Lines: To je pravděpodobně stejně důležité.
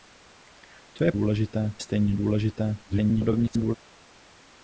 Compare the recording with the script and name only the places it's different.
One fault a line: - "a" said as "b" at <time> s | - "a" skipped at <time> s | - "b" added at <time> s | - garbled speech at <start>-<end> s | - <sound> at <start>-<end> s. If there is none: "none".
- "pravděpodobně" said as "důležité" at 1.1 s
- garbled speech at 2.8-3.8 s